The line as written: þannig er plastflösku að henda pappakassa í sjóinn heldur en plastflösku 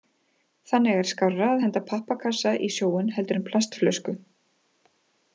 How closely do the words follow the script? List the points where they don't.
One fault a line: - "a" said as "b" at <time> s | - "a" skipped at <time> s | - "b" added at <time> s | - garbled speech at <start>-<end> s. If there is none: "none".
- "plastflösku" said as "skárra" at 1.1 s